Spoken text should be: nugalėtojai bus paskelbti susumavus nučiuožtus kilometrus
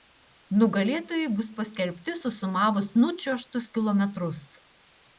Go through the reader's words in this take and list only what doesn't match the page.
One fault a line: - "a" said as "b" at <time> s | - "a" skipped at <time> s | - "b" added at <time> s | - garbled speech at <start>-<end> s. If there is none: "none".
none